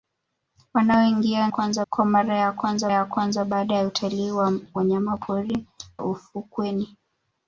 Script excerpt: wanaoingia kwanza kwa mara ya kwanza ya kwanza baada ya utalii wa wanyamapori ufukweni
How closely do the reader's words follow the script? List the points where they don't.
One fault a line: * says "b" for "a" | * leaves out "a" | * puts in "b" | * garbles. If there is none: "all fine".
all fine